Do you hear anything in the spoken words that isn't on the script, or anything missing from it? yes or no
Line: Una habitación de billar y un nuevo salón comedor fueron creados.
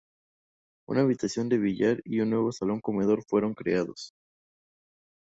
no